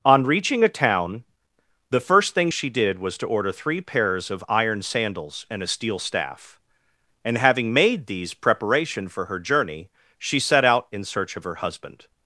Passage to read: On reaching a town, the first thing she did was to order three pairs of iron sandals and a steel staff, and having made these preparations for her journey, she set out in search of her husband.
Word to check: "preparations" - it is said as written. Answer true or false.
false